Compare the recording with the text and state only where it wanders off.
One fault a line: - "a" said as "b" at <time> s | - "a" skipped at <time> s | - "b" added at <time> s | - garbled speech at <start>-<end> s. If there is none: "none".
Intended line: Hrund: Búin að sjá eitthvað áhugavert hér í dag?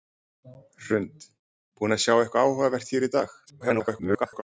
- garbled speech at 3.5-4.4 s